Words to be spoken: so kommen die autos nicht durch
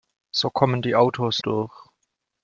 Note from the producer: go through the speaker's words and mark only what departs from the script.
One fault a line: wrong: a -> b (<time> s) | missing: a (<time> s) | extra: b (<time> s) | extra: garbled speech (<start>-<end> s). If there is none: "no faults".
missing: nicht (1.4 s)